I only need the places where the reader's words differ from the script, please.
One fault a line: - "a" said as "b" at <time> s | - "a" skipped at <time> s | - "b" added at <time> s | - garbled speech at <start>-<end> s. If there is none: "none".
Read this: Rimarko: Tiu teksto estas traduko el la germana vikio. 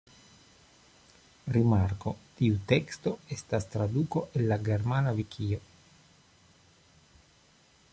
none